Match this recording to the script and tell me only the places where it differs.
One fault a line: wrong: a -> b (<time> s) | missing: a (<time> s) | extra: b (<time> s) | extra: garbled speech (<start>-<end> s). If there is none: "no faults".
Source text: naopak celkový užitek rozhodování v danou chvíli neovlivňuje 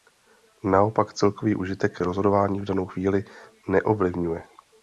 no faults